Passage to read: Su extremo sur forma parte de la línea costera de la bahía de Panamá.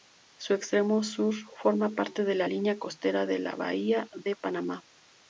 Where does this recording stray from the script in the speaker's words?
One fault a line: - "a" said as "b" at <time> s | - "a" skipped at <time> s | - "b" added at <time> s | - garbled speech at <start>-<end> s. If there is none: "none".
none